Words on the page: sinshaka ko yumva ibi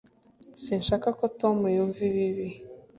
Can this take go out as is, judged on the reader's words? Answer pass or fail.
fail